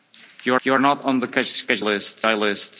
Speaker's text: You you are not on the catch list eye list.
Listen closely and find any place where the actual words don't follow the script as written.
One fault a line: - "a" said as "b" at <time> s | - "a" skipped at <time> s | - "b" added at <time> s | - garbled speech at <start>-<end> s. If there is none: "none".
none